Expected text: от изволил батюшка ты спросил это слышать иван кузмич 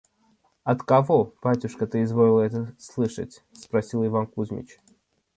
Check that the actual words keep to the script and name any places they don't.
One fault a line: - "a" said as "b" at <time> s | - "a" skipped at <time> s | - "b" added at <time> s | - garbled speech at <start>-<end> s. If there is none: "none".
- "изволил" said as "кого" at 0.8 s
- "спросил" said as "изволил" at 2.0 s
- "спросил" added at 3.5 s